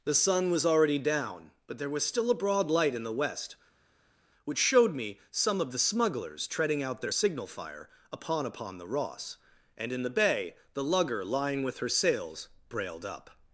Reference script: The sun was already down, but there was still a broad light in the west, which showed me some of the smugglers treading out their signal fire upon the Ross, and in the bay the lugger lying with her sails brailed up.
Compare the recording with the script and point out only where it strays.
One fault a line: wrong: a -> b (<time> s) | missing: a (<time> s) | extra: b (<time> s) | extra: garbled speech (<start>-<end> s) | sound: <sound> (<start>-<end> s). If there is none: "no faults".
extra: upon (8.4 s)